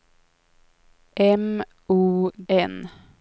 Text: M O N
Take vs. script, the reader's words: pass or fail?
pass